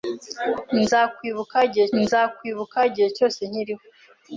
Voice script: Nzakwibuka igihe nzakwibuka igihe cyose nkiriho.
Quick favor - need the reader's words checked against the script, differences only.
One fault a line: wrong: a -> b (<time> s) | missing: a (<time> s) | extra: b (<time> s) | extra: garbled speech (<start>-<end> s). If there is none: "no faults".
no faults